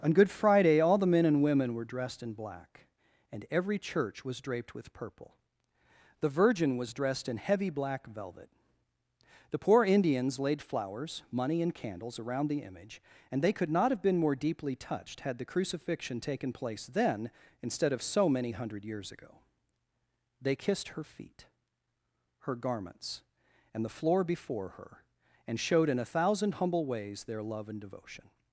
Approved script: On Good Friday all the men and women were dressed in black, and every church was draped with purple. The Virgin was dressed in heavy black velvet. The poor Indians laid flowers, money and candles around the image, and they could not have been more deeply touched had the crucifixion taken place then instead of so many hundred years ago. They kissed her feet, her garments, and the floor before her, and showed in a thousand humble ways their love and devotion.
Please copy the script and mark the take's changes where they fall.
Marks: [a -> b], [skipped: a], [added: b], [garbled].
On Good Friday all the men and women were dressed in black, and every church was draped with purple. The Virgin was dressed in heavy black velvet. The poor Indians laid flowers, money and candles around the image, and they could not have been more deeply touched had the crucifixion taken place then instead of so many hundred years ago. They kissed her feet, her garments, and the floor before her, and showed in a thousand humble ways their love and devotion.